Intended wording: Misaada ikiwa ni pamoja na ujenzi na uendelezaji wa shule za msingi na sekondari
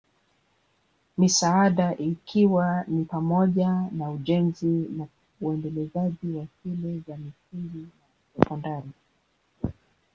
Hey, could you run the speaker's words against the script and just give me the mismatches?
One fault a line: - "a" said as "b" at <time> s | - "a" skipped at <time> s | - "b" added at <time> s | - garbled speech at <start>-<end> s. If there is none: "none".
none